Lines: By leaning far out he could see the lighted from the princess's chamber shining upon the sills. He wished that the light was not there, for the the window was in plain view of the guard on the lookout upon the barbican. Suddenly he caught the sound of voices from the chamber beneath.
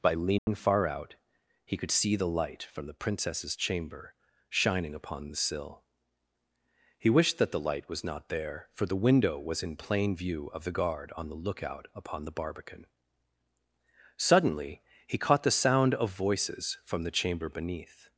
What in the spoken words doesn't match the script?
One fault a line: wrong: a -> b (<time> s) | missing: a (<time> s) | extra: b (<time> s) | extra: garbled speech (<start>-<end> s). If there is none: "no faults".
wrong: lighted -> light (2.3 s)
wrong: sills -> sill (5.3 s)
missing: the (9.0 s)